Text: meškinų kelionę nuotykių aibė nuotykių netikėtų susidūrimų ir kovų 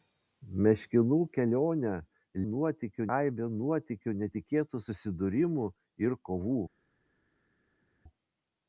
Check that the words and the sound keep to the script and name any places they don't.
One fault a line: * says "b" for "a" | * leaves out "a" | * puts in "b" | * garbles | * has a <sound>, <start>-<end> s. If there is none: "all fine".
all fine